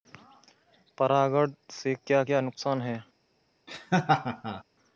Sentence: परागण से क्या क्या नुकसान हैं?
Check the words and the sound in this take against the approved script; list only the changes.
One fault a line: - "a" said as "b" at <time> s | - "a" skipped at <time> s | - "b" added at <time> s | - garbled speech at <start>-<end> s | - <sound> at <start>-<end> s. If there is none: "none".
- laugh at 3.7-4.6 s